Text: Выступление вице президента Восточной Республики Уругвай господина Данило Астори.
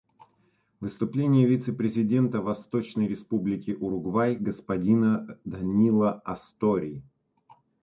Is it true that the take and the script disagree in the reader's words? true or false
false